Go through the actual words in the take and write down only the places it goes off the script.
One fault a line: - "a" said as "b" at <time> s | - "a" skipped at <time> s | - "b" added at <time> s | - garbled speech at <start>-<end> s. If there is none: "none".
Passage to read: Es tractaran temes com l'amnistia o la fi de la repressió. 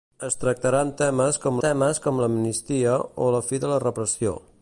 - "temes com" added at 1.6 s